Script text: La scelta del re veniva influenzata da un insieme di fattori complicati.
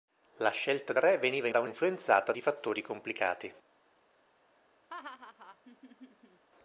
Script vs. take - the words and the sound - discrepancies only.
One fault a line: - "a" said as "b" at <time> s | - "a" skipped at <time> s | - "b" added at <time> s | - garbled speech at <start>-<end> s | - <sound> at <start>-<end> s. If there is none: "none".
- "del" skipped at 0.9 s
- "influenzata" skipped at 1.5 s
- "insieme" said as "influenzata" at 1.6 s
- laugh at 4.9-6.4 s